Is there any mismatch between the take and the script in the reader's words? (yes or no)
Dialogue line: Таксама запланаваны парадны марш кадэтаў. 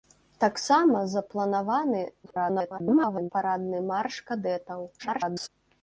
yes